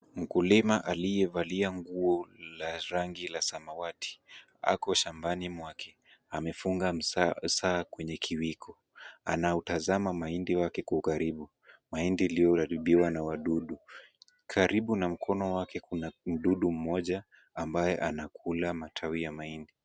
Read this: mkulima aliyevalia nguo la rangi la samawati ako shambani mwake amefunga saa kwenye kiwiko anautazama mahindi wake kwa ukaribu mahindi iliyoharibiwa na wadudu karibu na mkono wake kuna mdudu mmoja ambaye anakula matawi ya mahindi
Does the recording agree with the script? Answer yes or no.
yes